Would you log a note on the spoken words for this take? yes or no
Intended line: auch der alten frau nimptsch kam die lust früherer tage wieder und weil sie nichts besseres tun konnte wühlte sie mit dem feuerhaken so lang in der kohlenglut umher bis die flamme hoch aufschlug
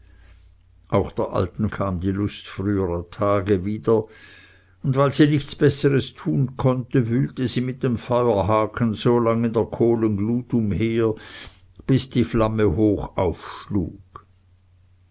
yes